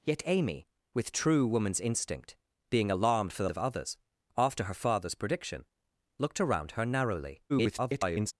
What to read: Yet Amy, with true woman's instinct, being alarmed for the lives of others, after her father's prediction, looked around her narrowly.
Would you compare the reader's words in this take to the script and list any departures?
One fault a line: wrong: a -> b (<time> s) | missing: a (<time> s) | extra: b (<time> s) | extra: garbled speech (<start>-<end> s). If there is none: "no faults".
missing: lives (3.5 s)
extra: garbled speech (7.5-8.3 s)